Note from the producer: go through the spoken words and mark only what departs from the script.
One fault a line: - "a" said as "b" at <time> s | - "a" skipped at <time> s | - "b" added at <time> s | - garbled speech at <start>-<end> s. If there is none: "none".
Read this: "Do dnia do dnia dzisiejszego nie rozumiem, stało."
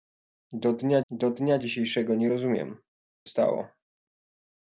none